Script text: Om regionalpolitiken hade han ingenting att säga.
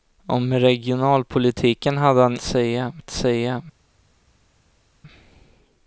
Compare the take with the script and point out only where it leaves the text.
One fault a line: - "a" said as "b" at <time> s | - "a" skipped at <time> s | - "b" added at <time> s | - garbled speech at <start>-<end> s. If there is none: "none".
- "ingenting" said as "säga" at 2.4 s